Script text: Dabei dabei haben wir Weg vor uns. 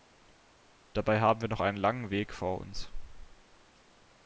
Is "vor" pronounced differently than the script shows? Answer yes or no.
no